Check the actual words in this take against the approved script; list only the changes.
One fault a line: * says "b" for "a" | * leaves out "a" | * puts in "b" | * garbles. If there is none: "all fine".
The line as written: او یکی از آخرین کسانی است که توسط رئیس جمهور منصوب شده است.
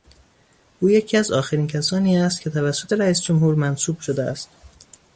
all fine